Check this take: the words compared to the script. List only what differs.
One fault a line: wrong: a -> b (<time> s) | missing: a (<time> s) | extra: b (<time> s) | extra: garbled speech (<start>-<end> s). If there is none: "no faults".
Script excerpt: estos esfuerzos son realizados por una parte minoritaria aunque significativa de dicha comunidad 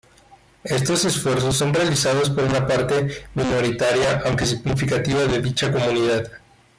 no faults